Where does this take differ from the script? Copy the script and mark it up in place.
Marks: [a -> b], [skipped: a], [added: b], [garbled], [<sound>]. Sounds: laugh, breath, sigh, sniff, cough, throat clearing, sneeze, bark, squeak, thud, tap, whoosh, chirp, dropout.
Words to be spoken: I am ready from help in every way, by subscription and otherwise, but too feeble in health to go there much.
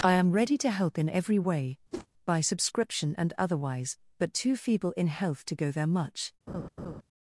I am ready [from -> to] help in every way, [whoosh] by subscription and otherwise, but too feeble in health to go there much. [laugh]